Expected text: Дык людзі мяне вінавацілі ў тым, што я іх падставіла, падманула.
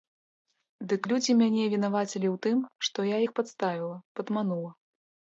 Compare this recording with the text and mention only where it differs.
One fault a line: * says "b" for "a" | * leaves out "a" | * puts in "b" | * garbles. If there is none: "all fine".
all fine